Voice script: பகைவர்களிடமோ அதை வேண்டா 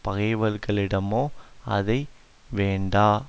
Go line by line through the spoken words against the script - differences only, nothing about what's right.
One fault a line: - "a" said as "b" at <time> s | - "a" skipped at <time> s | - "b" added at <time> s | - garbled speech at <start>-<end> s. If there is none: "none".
none